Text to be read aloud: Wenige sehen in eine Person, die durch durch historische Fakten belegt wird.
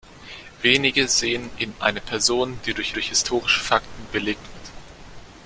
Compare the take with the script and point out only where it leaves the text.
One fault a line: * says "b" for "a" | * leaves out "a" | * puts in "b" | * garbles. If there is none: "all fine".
all fine